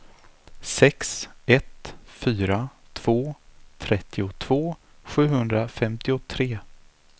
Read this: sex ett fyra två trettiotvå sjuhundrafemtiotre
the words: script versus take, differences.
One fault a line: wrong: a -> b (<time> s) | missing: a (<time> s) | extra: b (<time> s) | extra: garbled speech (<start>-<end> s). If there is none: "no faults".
no faults